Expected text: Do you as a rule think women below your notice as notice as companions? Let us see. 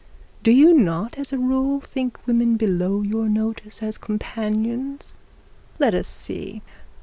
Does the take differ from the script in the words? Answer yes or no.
yes